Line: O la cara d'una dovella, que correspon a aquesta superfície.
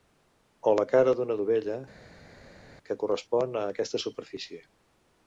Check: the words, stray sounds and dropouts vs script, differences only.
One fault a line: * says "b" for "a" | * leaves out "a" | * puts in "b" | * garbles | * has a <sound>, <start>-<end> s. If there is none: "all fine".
all fine